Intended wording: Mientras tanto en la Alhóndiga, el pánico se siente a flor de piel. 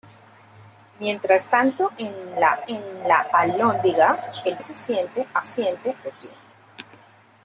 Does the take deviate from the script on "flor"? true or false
true